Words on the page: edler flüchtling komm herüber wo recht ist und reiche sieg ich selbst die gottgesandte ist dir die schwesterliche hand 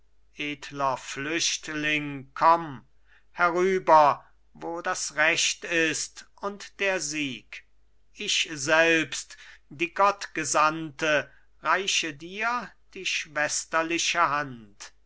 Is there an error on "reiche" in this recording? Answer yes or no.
yes